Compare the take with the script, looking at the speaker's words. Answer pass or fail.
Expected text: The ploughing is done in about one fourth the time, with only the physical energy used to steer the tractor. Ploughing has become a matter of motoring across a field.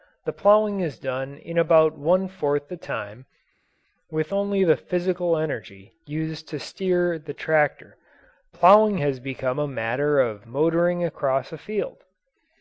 pass